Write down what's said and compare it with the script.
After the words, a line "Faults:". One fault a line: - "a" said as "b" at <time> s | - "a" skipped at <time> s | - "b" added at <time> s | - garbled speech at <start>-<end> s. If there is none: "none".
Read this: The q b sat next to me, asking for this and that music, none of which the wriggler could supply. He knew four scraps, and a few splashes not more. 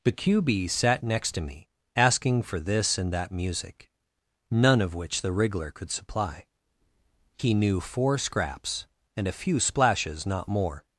The q b sat next to me, asking for this and that music, none of which the wriggler could supply. He knew four scraps, and a few splashes not more.
Faults:
none